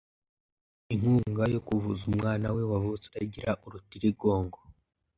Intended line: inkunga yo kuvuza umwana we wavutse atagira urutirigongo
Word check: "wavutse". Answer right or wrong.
right